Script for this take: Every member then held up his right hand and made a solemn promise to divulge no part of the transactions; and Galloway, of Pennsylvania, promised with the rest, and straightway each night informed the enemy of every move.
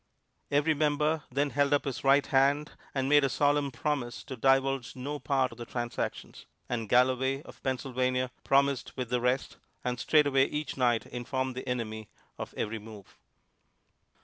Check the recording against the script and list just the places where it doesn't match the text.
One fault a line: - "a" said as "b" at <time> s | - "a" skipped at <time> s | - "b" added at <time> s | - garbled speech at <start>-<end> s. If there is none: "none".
none